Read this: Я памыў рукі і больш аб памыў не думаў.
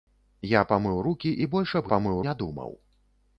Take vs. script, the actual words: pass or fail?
pass